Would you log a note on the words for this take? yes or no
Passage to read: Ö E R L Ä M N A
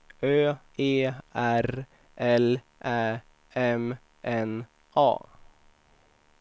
no